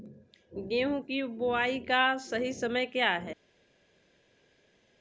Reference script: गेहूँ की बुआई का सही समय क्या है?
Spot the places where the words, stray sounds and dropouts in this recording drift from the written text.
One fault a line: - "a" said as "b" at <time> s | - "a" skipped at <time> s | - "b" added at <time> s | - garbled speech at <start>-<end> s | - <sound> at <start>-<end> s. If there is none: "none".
none